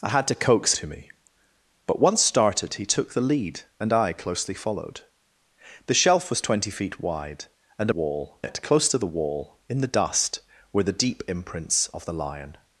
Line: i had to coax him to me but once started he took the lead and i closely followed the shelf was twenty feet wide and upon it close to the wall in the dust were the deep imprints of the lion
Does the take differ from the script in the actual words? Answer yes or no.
yes